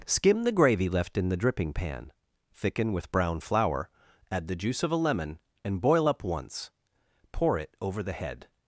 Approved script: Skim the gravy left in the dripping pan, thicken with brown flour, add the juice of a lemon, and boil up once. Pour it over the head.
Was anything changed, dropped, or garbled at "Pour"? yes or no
no